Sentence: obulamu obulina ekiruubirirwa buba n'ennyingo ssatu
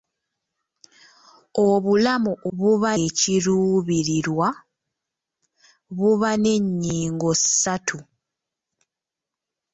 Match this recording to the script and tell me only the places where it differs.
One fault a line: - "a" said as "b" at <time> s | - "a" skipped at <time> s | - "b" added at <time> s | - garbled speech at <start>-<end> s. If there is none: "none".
- "obulina" said as "buba" at 2.6 s